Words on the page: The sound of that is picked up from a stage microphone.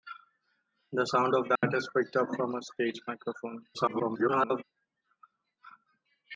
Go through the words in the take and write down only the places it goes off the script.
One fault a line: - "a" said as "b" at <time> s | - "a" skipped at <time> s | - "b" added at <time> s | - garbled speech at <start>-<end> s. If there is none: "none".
- garbled speech at 3.7-4.6 s